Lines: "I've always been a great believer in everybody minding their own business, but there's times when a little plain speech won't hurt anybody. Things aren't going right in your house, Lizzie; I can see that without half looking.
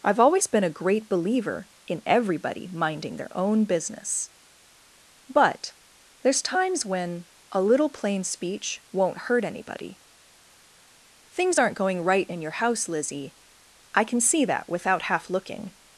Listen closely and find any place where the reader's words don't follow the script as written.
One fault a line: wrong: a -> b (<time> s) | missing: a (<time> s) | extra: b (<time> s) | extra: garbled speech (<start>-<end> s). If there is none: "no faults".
no faults